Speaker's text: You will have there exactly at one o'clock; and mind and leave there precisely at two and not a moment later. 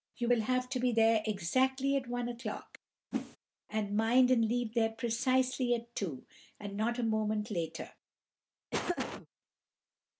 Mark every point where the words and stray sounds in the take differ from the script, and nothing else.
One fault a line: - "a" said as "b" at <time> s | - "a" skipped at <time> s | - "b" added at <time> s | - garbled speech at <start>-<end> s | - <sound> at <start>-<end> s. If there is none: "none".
- "to be" added at 0.7 s
- whoosh at 3.1-3.4 s
- laugh at 8.7-9.3 s